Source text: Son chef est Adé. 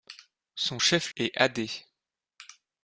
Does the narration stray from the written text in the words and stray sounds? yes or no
no